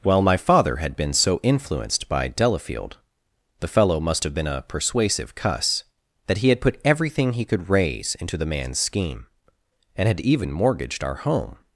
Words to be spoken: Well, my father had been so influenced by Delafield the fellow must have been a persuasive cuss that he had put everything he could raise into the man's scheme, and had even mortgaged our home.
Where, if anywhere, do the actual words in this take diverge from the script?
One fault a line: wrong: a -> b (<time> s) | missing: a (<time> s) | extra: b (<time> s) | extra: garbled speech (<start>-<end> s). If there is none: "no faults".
no faults